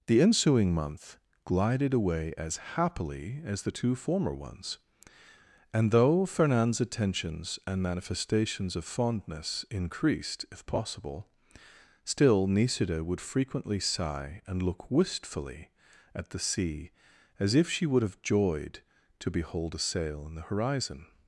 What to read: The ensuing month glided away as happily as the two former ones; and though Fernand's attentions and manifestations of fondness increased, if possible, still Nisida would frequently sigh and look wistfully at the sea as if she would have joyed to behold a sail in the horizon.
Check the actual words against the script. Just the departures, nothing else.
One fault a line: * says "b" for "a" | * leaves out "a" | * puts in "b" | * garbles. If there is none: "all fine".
all fine